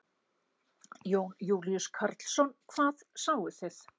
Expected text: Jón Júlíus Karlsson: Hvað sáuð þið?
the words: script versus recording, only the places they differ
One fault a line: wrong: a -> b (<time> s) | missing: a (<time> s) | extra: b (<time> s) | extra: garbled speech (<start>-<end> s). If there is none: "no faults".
no faults